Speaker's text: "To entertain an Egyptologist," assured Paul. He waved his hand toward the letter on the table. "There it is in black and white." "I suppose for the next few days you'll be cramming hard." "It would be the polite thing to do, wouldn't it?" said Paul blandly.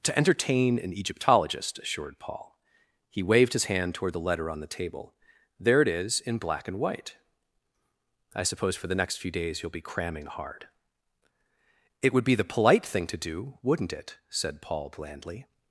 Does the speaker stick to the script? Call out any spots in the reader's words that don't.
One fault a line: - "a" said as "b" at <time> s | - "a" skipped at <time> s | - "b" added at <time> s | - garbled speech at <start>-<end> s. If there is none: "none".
none